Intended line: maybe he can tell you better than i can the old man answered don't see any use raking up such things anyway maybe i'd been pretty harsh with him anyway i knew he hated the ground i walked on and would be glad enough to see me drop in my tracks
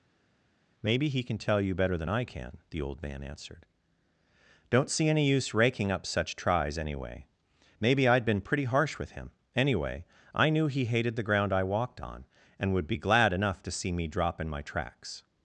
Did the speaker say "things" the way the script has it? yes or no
no